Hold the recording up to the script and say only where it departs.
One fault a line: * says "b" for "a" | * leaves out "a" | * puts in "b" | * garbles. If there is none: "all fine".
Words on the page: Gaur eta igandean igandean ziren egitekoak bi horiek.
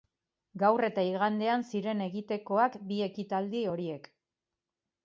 * leaves out "igandean"
* puts in "ekitaldi"